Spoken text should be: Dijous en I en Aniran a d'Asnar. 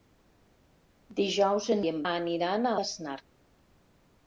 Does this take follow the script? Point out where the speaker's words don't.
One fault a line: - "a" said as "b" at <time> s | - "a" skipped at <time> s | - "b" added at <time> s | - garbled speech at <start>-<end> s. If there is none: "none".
none